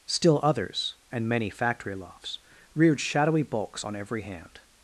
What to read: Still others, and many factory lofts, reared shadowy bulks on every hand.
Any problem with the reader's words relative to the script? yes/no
no